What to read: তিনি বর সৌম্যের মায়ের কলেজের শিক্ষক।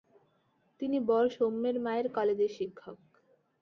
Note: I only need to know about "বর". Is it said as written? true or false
true